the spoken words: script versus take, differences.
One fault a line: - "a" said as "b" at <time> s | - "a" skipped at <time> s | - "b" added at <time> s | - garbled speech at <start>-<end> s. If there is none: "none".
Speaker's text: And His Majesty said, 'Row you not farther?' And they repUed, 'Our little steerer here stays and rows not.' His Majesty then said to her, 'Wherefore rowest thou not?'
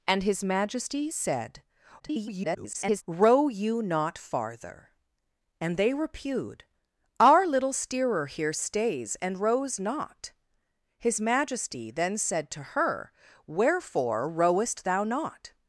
- garbled speech at 2.0-3.0 s